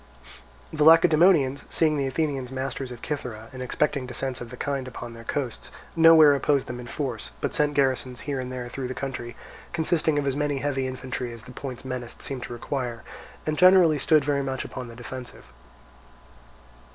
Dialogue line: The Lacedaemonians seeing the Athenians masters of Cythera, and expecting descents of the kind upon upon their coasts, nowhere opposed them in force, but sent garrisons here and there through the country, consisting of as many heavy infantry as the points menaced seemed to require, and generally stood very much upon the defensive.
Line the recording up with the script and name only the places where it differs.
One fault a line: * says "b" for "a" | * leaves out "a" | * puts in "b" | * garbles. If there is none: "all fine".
* leaves out "upon"